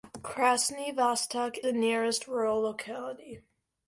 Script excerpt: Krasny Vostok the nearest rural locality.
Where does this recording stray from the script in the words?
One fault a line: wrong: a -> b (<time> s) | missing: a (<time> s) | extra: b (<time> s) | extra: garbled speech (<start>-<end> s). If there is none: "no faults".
no faults